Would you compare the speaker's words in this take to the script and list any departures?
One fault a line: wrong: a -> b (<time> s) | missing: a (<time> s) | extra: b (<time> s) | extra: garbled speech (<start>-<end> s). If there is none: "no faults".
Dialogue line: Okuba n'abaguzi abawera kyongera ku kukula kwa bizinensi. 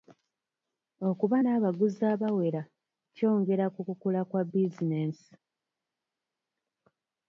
no faults